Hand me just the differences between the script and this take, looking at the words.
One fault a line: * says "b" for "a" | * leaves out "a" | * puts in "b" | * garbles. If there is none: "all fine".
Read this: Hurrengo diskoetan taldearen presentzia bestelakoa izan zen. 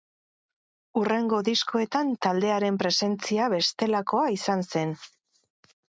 all fine